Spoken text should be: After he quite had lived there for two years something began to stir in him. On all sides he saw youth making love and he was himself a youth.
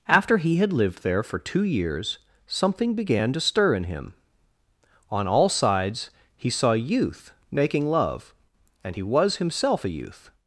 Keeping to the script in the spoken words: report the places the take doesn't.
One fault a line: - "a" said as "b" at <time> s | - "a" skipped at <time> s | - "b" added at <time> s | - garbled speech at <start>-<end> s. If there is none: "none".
- "quite" skipped at 0.6 s